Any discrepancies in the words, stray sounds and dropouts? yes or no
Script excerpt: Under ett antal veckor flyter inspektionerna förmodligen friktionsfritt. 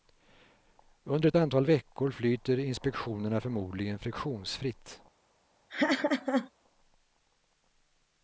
yes